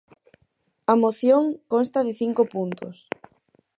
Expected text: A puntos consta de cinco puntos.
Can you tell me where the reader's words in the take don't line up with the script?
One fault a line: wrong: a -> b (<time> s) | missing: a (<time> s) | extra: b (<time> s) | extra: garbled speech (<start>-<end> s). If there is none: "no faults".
wrong: puntos -> moción (1.0 s)